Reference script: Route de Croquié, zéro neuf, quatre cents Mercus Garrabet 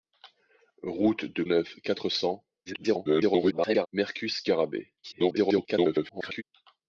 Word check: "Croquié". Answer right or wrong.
wrong